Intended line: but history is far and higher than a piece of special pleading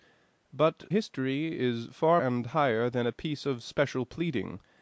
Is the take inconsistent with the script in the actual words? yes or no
no